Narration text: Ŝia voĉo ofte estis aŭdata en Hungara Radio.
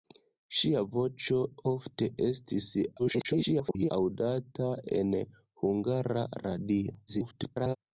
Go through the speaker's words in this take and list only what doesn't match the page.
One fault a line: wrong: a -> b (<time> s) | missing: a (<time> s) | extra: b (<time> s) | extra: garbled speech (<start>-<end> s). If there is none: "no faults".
extra: garbled speech (3.0-3.9 s)
extra: garbled speech (7.1-7.8 s)